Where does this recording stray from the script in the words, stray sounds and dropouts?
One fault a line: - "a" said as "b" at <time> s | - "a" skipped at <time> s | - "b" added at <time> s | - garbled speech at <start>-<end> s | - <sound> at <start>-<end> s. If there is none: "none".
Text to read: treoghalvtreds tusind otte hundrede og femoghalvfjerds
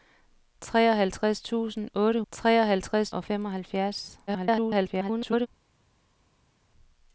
- "hundrede" said as "treoghalvtreds" at 2.3 s
- garbled speech at 4.3-5.5 s